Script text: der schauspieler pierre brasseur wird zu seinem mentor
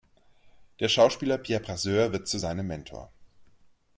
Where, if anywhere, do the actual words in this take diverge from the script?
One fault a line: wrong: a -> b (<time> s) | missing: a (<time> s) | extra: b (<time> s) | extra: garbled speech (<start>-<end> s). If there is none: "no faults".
no faults